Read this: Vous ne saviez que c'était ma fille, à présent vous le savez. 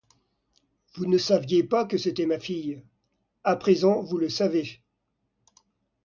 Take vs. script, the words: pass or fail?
fail